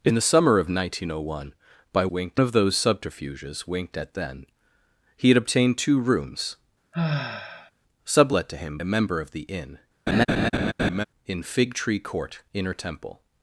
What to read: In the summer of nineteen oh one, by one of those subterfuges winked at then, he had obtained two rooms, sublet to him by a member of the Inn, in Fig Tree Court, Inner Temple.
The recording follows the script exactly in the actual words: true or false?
false